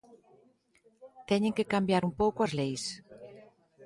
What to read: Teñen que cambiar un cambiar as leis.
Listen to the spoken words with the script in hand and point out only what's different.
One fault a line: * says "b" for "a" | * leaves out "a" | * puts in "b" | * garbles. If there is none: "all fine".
* says "pouco" for "cambiar"